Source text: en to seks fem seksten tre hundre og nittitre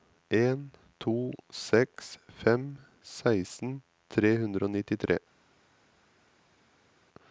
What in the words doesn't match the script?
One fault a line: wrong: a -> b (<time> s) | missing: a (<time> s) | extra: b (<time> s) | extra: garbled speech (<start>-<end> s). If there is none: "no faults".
no faults